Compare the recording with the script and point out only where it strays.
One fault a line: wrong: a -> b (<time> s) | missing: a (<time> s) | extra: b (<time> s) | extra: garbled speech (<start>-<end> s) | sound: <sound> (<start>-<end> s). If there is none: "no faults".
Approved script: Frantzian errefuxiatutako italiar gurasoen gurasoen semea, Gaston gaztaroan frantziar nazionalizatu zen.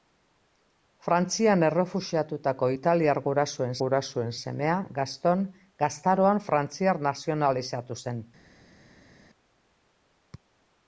no faults